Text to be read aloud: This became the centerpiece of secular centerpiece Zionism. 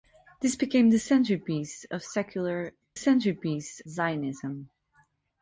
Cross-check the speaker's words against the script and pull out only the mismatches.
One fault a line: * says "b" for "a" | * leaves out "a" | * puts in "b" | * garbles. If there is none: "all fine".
all fine